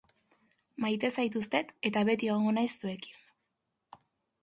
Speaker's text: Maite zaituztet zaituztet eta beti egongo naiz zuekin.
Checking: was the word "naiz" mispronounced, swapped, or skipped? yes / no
no